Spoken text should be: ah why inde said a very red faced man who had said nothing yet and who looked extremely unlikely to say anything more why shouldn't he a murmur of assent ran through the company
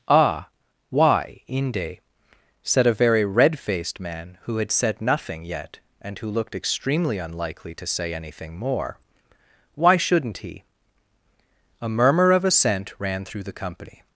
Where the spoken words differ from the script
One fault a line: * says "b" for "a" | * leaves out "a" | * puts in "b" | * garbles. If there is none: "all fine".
all fine